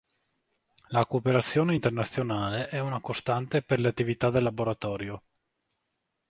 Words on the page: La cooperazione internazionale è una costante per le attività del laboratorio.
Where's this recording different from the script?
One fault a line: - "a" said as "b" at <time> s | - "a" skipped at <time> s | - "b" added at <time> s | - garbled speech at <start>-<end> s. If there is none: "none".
none